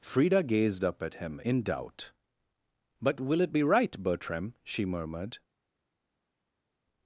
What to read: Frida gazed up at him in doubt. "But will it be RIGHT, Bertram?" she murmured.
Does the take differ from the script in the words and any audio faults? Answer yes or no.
no